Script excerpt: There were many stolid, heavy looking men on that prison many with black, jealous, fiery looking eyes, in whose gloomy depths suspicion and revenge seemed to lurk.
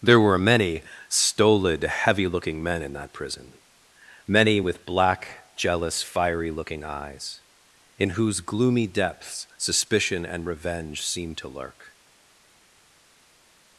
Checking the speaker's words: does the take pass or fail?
fail